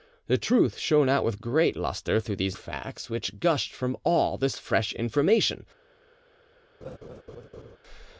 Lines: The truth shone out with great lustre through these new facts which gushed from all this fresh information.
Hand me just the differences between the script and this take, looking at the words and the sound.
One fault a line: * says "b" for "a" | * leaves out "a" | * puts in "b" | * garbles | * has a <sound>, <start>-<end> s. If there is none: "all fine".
* leaves out "new"
* has a laugh, 6.8-7.8 s